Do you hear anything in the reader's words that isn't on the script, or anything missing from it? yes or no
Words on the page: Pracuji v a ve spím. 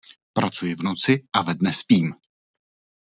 yes